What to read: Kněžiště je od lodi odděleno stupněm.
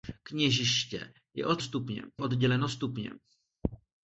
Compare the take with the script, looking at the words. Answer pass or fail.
fail